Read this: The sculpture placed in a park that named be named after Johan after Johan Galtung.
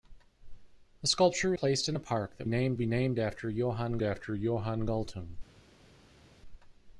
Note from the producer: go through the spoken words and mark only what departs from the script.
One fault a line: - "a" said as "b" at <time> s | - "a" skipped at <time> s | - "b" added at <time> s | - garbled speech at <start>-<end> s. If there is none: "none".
none